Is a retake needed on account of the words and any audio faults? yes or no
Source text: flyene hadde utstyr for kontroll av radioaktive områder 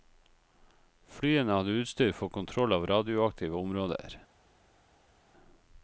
no